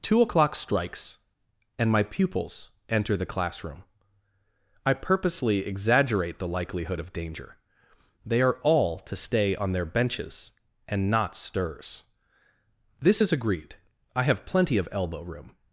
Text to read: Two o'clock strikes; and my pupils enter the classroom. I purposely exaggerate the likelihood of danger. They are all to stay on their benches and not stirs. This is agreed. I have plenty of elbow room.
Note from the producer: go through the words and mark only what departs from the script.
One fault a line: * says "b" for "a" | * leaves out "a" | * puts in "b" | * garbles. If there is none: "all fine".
all fine